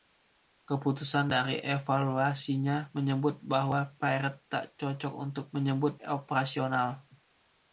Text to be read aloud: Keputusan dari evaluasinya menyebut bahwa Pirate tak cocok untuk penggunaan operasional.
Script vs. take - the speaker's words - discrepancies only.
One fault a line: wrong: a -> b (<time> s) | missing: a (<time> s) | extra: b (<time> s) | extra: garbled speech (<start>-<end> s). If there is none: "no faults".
wrong: penggunaan -> menyebut (5.6 s)